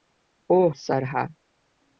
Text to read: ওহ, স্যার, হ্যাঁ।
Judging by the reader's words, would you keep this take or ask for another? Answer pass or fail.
pass